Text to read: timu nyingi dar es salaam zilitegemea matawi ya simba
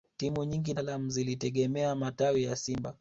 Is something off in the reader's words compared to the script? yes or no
yes